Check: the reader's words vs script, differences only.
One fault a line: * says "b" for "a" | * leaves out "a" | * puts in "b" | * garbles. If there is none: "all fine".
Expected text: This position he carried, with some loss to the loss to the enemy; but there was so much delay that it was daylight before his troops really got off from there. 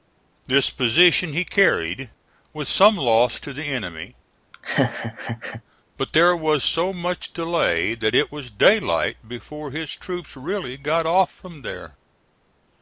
* leaves out "loss to the"